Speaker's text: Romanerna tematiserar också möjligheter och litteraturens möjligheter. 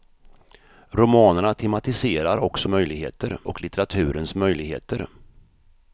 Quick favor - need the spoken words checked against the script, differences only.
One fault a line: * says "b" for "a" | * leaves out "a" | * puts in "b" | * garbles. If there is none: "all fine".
all fine